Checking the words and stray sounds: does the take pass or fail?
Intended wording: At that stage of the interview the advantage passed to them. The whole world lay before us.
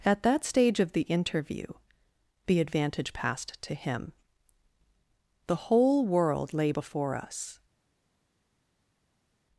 fail